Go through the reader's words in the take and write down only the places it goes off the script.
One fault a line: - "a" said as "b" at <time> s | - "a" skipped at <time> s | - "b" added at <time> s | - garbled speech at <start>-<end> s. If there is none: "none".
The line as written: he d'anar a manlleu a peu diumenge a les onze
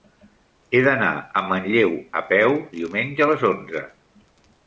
none